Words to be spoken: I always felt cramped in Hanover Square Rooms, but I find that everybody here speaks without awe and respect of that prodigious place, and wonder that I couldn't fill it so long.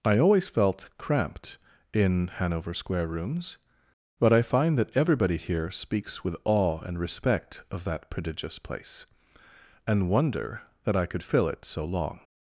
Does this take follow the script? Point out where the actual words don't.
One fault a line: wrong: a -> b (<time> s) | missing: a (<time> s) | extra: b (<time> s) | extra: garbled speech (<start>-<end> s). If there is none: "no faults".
wrong: without -> with (6.2 s)
wrong: couldn't -> could (11.1 s)